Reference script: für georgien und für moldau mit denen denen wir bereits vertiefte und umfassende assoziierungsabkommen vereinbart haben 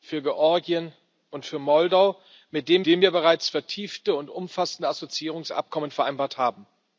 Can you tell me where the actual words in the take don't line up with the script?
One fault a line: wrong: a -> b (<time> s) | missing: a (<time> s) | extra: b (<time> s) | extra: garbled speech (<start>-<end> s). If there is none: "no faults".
no faults